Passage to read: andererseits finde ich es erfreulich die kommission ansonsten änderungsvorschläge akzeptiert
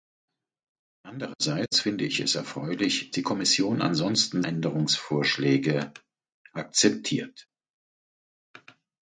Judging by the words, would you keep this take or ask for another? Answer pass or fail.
pass